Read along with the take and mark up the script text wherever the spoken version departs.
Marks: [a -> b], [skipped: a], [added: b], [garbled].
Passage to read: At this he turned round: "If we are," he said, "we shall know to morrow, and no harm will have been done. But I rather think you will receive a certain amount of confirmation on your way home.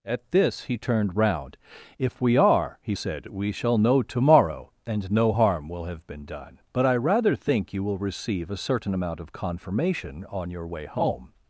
At this he turned round: "If we are," he said, "we shall know to morrow, and no harm will have been done. But I rather think you will receive a certain amount of confirmation on your way home.